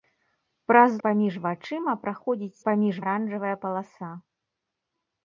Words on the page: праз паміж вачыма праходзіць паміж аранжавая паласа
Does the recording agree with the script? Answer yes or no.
yes